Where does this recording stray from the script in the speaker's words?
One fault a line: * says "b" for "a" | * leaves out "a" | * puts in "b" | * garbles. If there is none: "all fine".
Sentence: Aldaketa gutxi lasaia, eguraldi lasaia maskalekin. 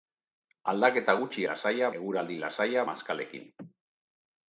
all fine